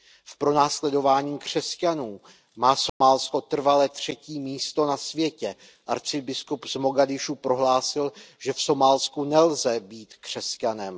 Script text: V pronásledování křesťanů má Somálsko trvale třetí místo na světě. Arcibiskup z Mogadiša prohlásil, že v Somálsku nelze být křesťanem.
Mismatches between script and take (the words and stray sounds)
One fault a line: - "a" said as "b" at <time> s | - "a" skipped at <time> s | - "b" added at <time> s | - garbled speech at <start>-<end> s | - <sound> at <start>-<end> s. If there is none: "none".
- dropout at 2.9-3.0 s